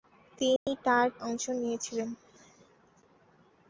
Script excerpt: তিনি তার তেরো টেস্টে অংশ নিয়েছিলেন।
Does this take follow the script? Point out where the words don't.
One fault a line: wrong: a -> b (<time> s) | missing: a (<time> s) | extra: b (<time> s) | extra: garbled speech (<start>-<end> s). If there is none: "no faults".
missing: তেরো টেস্টে (1.1 s)